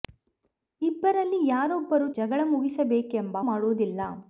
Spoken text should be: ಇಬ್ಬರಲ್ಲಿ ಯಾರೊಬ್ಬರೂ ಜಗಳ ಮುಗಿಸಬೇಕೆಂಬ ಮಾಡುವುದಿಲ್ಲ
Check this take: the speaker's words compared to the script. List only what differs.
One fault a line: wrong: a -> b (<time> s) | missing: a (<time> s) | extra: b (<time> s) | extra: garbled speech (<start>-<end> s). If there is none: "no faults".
no faults